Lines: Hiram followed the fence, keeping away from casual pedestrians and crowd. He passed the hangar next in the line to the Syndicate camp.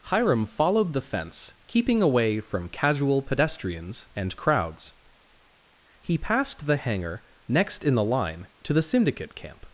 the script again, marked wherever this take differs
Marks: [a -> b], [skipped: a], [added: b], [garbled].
Hiram followed the fence, keeping away from casual pedestrians and [crowd. -> crowds] He passed the hangar next in the line to the Syndicate camp.